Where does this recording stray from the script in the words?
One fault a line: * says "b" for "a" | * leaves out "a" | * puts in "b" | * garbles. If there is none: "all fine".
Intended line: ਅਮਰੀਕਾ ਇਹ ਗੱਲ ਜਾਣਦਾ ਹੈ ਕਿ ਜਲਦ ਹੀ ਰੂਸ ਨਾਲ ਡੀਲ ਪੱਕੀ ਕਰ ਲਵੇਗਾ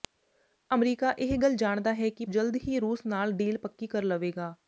all fine